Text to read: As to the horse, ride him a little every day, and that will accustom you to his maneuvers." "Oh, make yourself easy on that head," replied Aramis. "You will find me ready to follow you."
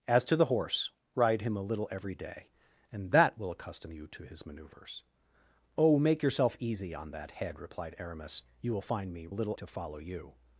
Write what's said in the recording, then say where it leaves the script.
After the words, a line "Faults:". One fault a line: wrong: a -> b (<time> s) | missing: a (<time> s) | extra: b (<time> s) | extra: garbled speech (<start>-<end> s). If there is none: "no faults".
As to the horse, ride him a little every day, and that will accustom you to his maneuvers." "Oh, make yourself easy on that head," replied Aramis. "You will find me little to follow you."
Faults:
wrong: ready -> little (9.3 s)